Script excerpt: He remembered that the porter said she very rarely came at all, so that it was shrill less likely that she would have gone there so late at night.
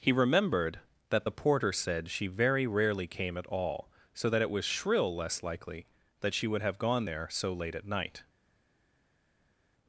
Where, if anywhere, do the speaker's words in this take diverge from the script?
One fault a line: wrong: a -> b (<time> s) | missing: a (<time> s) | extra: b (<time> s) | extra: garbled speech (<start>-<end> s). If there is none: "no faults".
no faults